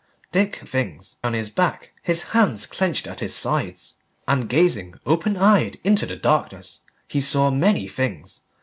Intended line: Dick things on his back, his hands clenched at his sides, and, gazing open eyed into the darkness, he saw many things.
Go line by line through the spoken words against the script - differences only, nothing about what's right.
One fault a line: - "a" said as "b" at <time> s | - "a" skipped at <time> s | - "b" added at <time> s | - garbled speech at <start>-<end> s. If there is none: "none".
none